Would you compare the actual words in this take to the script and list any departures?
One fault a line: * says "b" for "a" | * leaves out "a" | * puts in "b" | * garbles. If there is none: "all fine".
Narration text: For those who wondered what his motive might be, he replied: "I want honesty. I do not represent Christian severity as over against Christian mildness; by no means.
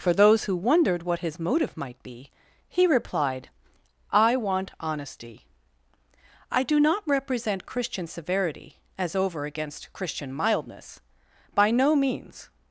all fine